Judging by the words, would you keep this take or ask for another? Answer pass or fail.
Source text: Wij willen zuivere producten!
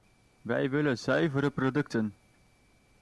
pass